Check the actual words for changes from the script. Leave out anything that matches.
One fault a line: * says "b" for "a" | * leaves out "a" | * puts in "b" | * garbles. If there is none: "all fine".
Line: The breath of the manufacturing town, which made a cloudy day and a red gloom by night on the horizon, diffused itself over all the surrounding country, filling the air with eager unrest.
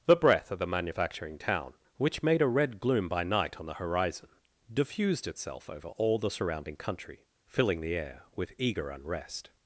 * leaves out "cloudy day and a"